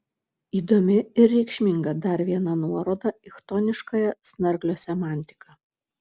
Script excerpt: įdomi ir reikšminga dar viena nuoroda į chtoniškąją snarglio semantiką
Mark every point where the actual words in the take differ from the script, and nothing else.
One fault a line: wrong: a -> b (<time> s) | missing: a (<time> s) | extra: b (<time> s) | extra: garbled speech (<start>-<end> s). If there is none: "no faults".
no faults